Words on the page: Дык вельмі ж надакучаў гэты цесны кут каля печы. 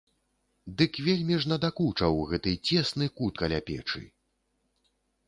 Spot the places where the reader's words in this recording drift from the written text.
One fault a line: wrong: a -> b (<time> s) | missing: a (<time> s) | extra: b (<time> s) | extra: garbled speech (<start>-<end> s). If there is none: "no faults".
no faults